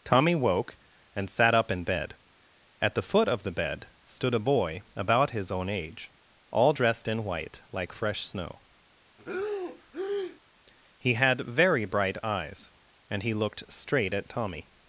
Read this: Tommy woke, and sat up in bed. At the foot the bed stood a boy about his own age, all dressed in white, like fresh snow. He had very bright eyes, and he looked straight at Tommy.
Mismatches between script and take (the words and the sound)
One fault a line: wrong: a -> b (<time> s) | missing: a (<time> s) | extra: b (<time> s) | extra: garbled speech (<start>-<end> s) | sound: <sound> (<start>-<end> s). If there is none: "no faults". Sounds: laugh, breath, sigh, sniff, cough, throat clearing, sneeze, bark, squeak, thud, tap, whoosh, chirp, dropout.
extra: of (3.3 s)
sound: breath (9.2-10.4 s)